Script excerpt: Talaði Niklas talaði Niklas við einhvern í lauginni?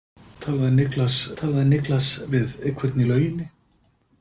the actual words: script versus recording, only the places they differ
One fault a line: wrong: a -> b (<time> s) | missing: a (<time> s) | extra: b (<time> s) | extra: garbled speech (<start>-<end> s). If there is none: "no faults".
no faults